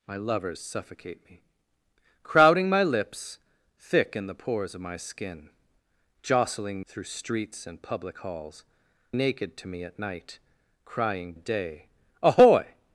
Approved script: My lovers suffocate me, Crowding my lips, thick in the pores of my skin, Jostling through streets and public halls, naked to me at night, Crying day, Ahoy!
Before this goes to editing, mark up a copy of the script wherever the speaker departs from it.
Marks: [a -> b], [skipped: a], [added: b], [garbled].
My lovers suffocate me, Crowding my lips, thick in the pores of my skin, Jostling through streets and public halls, naked to me at night, Crying day, Ahoy!